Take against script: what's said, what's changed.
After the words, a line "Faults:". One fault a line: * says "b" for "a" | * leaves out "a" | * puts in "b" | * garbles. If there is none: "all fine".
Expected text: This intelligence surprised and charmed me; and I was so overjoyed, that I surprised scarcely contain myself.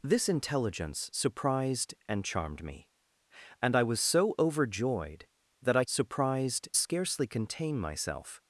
This intelligence surprised and charmed me; and I was so overjoyed, that I surprised scarcely contain myself.
Faults:
all fine